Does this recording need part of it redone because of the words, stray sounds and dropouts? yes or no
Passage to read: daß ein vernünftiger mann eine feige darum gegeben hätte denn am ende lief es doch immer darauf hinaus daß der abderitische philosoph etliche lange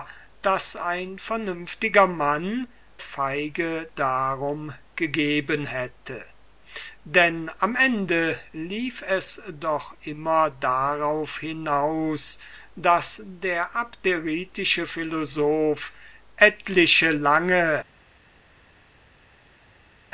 yes